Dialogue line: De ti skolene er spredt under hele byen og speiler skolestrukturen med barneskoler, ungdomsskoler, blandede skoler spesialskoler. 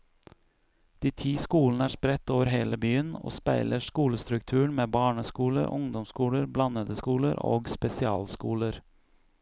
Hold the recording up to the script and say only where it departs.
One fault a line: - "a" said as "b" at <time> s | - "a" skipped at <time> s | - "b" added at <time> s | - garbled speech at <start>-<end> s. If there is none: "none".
- "under" said as "over" at 2.3 s
- "og" added at 7.5 s